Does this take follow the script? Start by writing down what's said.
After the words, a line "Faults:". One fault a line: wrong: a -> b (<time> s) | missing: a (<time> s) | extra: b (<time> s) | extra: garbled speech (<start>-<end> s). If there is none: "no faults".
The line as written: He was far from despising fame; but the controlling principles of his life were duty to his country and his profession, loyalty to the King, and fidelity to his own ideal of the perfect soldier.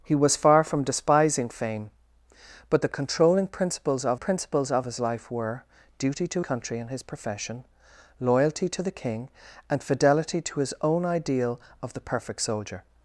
He was far from despising fame; but the controlling principles of principles of his life were duty to country and his profession, loyalty to the King, and fidelity to his own ideal of the perfect soldier.
Faults:
extra: principles of (4.2 s)
missing: his (6.4 s)